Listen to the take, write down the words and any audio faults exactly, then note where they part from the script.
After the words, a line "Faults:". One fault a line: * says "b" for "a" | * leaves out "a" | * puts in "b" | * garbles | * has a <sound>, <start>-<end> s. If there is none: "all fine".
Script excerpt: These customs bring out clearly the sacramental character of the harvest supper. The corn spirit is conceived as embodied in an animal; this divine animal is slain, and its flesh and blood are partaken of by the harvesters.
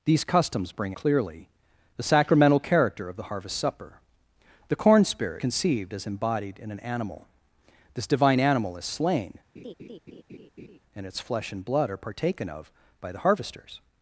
These customs bring clearly the sacramental character of the harvest supper. The corn spirit conceived as embodied in an animal; this divine animal is slain, and its flesh and blood are partaken of by the harvesters.
Faults:
* leaves out "out"
* leaves out "is"
* has a laugh, 9.6-10.8 s